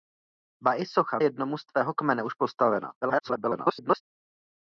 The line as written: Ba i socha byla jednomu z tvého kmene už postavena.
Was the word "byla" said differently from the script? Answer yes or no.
yes